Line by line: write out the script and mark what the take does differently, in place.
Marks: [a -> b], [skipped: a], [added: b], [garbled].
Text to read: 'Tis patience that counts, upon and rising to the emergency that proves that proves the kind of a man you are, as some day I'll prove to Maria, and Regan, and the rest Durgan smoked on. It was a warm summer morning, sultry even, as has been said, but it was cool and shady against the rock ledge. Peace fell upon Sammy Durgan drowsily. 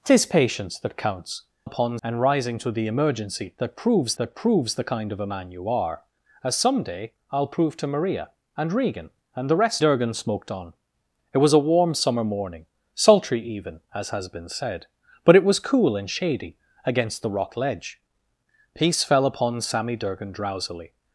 'Tis patience that counts, upon and rising to the emergency that proves that proves the kind of a man you are, as some day I'll prove to Maria, and Regan, and the rest Durgan smoked on. It was a warm summer morning, sultry even, as has been said, but it was cool and shady against the rock ledge. Peace fell upon Sammy Durgan drowsily.